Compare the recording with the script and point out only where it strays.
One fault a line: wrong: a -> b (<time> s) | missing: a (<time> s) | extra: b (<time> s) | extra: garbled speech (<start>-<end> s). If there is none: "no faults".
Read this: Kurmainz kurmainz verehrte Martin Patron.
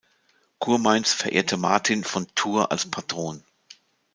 missing: kurmainz (1.1 s)
extra: von Tours als (2.0 s)